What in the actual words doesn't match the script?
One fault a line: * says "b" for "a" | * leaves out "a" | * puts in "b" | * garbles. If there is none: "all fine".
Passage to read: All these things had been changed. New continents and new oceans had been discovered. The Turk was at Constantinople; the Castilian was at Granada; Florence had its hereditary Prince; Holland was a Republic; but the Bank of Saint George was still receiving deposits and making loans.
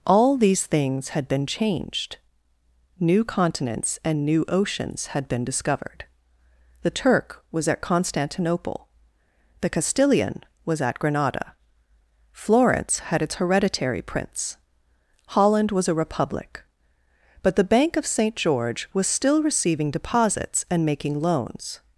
all fine